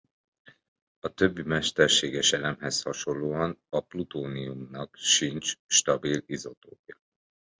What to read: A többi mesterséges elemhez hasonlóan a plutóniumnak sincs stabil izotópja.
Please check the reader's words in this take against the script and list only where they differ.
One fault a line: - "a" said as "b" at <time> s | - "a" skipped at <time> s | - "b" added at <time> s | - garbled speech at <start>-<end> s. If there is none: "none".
none